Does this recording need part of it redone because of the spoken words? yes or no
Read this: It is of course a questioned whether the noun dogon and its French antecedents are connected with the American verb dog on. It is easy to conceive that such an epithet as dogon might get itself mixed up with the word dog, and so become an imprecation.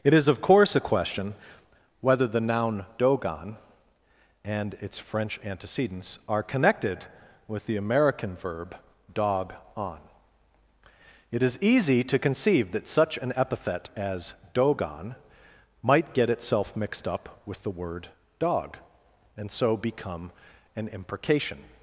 yes